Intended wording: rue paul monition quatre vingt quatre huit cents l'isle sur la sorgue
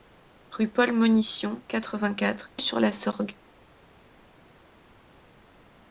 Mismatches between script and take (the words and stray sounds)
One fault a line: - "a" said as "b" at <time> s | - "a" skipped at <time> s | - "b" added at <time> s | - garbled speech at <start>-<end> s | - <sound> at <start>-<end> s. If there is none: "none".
- "huit cents l'isle" skipped at 2.5 s